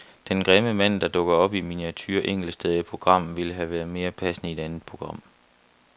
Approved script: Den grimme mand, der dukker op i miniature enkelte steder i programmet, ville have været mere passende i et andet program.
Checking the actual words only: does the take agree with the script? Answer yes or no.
yes